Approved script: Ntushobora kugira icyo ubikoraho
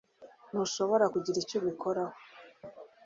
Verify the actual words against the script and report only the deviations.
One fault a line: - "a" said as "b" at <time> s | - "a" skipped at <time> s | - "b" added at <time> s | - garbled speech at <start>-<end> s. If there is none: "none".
none